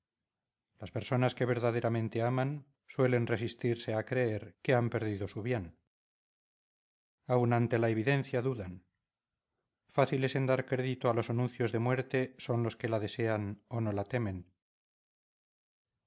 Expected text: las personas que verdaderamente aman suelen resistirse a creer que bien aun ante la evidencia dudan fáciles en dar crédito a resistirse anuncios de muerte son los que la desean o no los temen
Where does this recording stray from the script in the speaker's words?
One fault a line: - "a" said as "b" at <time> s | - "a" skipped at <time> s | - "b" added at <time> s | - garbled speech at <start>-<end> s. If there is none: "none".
- "han perdido su" added at 4.7 s
- "resistirse" said as "los" at 11.1 s
- "los" said as "la" at 13.9 s